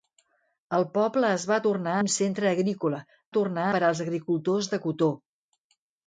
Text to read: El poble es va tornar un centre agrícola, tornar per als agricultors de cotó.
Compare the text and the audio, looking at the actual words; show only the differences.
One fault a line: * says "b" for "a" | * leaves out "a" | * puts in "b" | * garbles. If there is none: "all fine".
all fine